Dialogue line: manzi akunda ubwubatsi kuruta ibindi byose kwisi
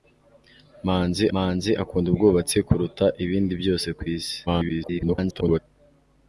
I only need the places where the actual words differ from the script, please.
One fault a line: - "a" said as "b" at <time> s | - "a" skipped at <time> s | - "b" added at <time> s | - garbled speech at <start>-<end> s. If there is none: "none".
- "manzi" added at 1.3 s
- garbled speech at 4.5-5.6 s